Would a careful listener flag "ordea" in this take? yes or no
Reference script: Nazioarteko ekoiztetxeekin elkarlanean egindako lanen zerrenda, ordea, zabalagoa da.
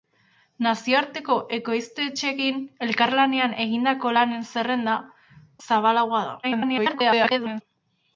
yes